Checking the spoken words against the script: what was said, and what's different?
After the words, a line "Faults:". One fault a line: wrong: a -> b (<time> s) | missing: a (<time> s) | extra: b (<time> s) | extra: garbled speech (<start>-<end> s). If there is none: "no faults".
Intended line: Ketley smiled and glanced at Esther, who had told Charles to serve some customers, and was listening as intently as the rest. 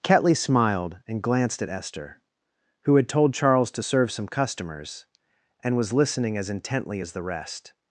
Ketley smiled and glanced at Esther, who had told Charles to serve some customers, and was listening as intently as the rest.
Faults:
no faults